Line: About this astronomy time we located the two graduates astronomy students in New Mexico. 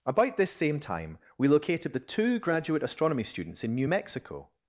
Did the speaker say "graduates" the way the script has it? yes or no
no